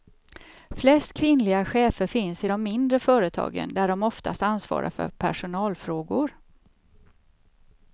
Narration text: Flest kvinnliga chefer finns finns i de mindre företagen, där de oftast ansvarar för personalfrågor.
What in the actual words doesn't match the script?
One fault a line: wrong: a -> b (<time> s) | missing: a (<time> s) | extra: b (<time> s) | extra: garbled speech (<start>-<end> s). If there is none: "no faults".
missing: finns (2.4 s)